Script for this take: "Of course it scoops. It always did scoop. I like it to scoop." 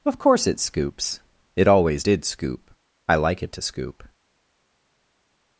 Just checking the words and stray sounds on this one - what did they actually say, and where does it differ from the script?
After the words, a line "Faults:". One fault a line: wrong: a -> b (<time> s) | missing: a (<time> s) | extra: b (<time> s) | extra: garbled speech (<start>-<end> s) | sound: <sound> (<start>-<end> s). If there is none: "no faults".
"Of course it scoops. It always did scoop. I like it to scoop."
Faults:
no faults